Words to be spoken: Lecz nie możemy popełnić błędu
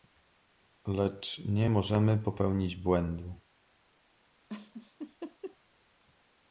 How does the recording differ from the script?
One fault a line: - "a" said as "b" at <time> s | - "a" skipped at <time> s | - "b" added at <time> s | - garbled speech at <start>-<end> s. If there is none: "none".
none